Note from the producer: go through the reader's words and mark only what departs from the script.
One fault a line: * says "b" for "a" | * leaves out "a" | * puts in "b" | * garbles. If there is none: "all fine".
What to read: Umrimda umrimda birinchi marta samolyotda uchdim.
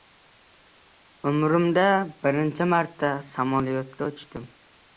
* leaves out "umrimda"